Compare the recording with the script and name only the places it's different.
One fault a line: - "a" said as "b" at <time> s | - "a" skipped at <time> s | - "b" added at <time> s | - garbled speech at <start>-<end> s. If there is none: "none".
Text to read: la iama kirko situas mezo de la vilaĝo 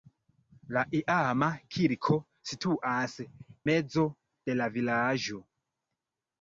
none